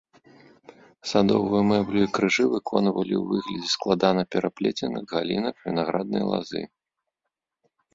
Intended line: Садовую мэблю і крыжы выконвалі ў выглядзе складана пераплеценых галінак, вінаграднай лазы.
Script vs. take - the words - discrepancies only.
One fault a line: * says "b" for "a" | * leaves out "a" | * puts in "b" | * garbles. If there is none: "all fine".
all fine